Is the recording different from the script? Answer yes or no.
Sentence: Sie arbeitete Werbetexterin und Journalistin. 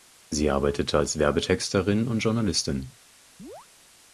yes